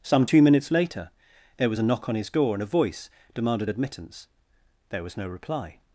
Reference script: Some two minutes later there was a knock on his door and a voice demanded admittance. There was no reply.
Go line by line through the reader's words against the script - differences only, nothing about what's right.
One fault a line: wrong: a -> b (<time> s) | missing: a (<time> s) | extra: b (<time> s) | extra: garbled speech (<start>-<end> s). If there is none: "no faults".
no faults